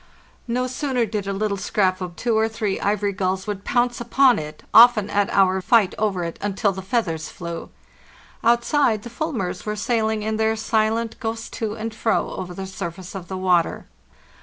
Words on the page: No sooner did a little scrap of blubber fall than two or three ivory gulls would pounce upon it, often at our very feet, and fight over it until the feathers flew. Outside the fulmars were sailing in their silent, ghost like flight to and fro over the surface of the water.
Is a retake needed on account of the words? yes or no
yes